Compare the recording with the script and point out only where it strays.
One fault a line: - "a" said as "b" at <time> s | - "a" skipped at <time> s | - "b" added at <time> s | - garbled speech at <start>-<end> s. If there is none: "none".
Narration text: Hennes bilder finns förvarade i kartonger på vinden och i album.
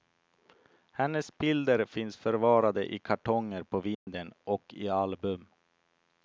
none